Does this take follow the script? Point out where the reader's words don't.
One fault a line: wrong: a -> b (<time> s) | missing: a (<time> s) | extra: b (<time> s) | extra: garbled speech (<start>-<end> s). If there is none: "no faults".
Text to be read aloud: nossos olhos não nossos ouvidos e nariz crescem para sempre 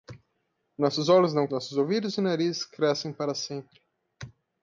no faults